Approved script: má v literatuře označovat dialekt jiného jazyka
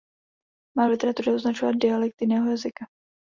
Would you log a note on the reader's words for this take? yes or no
no